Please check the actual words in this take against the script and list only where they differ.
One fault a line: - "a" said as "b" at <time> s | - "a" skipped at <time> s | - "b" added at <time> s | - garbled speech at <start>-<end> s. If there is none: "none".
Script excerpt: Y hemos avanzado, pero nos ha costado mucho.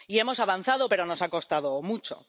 none